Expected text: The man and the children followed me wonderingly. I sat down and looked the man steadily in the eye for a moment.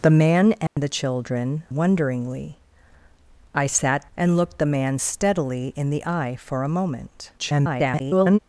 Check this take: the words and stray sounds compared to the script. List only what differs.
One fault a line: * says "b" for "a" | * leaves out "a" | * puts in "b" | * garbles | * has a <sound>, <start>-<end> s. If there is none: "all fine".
* has a dropout, 0.7-0.8 s
* leaves out "followed me"
* leaves out "down"
* garbles